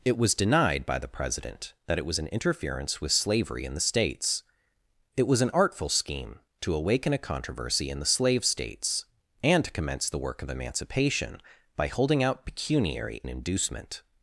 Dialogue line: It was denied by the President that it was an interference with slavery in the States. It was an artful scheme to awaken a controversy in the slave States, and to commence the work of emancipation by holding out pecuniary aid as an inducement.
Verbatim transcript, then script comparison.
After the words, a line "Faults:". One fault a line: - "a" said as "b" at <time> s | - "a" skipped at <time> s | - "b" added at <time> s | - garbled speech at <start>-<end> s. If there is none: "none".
It was denied by the President that it was an interference with slavery in the States. It was an artful scheme to awaken a controversy in the slave States, and to commence the work of emancipation by holding out pecuniary an inducement.
Faults:
- "aid as" skipped at 13.2 s